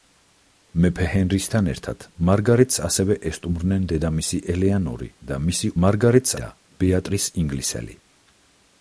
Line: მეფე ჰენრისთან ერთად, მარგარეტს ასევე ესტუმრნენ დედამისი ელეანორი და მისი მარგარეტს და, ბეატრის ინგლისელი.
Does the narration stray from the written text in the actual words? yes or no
no